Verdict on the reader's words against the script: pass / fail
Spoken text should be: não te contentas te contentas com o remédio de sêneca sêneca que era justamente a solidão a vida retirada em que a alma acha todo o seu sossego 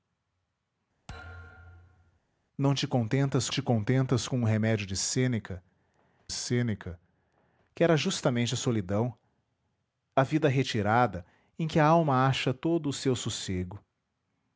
pass